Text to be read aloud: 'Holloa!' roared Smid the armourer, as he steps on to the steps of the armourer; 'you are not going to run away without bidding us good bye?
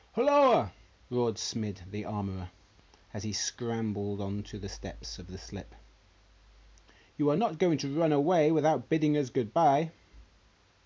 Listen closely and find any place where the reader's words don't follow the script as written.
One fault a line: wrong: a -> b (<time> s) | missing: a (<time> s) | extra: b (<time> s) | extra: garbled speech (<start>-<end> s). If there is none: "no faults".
wrong: steps -> scrambled (3.3 s)
wrong: armourer -> slip (5.4 s)